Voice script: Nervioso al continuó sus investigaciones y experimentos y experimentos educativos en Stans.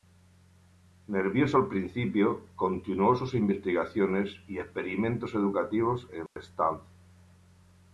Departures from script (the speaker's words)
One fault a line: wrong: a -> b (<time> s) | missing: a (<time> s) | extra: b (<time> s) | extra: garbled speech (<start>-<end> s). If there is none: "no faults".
extra: principio (1.7 s)
missing: y experimentos (5.3 s)